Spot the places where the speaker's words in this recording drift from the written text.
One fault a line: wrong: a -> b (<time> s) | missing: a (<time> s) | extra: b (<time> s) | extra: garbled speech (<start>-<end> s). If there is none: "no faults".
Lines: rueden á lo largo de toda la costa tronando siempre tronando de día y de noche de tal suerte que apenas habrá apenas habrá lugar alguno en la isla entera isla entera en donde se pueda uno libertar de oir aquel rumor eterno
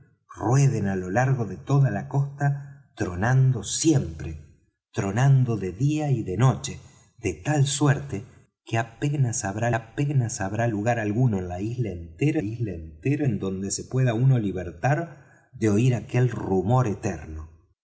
no faults